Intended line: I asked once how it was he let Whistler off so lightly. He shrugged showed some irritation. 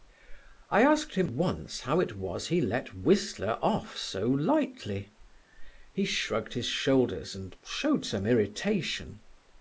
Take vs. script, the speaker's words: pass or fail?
fail